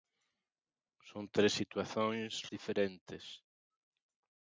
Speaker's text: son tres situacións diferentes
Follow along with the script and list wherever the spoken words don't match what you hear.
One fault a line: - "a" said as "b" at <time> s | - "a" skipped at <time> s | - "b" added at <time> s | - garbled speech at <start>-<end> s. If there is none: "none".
none